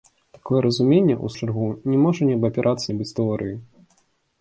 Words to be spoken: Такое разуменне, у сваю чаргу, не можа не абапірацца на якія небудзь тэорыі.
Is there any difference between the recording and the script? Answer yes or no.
yes